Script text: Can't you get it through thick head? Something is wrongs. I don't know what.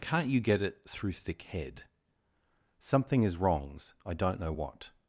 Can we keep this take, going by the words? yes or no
yes